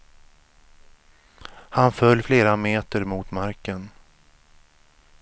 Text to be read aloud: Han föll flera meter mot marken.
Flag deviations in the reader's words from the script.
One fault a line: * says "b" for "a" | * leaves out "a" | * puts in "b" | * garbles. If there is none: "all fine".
all fine